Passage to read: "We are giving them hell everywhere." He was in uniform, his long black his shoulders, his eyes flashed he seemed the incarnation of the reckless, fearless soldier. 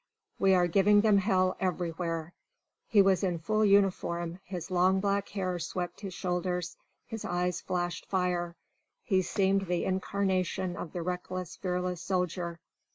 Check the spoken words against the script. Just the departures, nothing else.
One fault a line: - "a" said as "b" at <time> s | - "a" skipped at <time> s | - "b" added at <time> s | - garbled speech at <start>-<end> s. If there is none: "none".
- "full" added at 3.4 s
- "hair swept" added at 5.3 s
- "fire" added at 8.1 s